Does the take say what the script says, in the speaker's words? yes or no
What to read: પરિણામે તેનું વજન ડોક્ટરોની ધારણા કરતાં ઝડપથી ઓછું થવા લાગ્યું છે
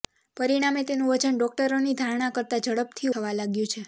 no